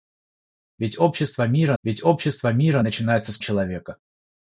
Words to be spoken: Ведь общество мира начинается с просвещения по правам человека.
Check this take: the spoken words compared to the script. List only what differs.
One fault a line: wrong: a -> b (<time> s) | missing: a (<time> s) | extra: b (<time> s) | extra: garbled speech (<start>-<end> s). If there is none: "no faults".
wrong: начинается с просвещения по правам -> ведь общество мира начинается с (1.8 s)